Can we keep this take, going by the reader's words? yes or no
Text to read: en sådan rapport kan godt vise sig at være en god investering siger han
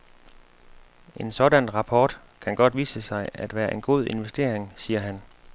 yes